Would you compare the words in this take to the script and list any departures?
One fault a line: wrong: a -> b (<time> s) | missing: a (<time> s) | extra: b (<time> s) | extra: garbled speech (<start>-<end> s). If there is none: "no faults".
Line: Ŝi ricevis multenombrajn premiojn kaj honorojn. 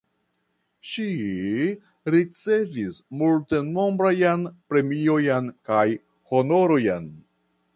no faults